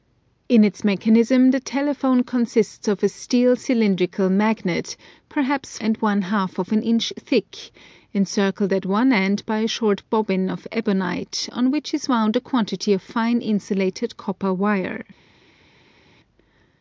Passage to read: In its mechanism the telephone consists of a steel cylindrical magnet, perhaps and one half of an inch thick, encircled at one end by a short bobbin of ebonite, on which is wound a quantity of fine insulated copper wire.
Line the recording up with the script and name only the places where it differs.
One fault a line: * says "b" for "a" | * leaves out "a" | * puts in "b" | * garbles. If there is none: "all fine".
all fine